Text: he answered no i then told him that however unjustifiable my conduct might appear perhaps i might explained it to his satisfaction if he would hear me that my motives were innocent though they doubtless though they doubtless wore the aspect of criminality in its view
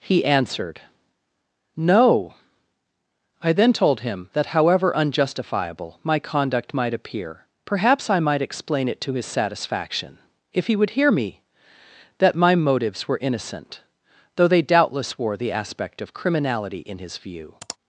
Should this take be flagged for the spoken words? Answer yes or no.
yes